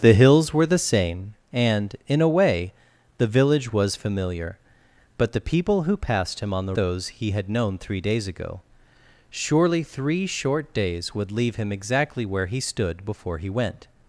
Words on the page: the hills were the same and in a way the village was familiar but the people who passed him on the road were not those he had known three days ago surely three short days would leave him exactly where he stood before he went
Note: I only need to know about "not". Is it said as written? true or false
false